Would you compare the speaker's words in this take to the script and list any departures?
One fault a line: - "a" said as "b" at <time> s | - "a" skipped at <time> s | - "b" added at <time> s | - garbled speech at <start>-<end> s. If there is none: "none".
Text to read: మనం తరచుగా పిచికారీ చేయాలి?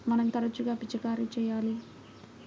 none